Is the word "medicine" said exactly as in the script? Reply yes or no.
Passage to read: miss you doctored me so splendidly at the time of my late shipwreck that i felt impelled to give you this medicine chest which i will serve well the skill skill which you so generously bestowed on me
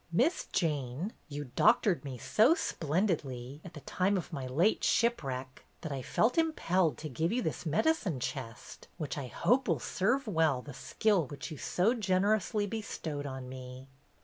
yes